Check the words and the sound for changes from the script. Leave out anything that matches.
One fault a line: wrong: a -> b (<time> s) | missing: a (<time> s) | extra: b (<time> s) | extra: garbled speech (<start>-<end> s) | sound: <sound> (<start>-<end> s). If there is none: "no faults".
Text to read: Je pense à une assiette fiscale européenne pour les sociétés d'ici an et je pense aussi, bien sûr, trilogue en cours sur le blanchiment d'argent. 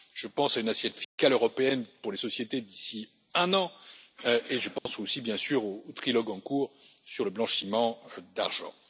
sound: dropout (1.0-1.2 s)
extra: un (3.3 s)
sound: dropout (4.8-4.9 s)
extra: au (5.6 s)